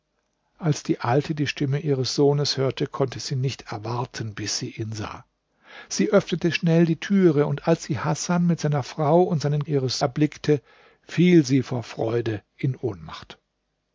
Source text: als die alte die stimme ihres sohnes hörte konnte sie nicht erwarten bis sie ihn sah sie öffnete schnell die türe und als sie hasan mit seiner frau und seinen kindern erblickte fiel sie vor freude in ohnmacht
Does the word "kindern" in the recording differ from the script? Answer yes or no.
yes